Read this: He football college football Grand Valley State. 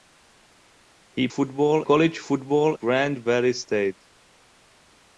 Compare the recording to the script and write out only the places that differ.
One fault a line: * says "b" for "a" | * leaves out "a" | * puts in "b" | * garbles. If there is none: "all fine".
all fine